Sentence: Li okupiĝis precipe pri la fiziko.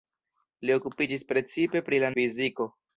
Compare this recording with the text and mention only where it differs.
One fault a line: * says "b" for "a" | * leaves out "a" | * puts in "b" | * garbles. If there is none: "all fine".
all fine